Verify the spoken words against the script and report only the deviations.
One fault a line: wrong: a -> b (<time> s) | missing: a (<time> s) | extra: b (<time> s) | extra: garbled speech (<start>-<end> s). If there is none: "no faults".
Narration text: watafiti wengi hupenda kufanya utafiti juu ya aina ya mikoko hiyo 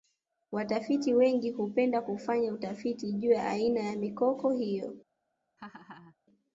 no faults